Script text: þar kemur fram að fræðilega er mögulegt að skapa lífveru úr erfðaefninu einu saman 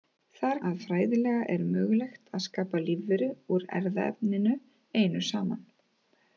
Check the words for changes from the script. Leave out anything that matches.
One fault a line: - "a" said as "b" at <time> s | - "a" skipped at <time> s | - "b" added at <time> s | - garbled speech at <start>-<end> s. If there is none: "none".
- "kemur fram" skipped at 0.6 s